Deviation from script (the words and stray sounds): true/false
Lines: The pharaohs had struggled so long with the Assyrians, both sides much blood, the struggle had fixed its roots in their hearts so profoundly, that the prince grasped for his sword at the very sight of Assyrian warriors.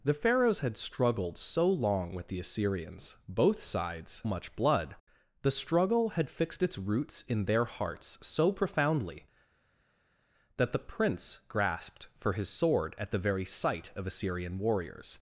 false